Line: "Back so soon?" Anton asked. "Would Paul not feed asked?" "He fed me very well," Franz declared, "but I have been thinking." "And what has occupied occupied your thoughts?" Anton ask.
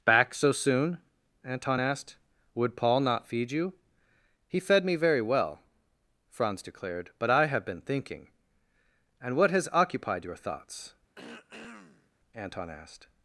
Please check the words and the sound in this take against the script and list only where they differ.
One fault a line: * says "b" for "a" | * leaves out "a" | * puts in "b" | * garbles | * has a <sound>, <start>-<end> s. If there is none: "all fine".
* says "you" for "asked"
* leaves out "occupied"
* has a throat clearing, 11.2-12.1 s
* says "asked" for "ask"